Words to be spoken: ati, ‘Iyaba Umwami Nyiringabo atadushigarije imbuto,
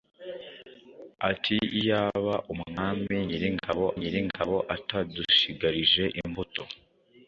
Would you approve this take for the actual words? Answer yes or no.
no